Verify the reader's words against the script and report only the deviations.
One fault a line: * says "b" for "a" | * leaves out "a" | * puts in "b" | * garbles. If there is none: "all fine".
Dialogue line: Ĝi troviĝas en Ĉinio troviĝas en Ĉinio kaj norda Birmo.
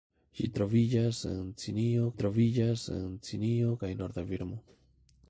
all fine